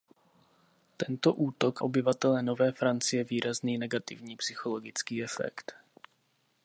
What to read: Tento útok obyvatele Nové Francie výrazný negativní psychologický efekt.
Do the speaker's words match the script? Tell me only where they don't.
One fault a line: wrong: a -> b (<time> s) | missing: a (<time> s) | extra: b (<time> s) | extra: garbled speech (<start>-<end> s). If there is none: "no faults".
no faults